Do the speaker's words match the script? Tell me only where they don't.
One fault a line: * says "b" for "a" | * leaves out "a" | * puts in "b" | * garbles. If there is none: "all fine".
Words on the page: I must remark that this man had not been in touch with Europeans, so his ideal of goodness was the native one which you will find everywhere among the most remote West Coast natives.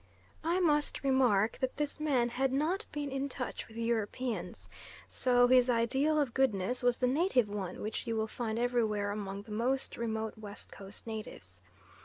all fine